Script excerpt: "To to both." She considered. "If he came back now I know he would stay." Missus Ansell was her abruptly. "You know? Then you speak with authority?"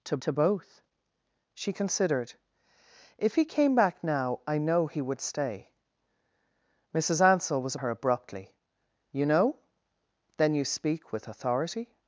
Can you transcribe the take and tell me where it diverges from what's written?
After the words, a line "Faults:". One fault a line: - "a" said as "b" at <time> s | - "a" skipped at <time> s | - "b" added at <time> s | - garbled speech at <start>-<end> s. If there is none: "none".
"To to both." She considered. "If he came back now I know he would stay." Missus Ansell was her abruptly. "You know? Then you speak with authority?"
Faults:
none